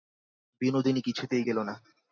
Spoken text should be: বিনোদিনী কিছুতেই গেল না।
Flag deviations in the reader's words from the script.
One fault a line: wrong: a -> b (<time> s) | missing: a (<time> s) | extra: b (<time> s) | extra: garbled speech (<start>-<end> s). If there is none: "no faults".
no faults